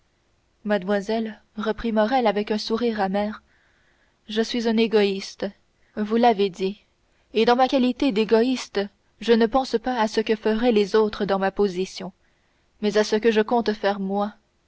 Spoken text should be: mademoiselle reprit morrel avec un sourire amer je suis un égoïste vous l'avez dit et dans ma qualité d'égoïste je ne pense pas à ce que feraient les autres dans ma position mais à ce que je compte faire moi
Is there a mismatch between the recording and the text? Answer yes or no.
no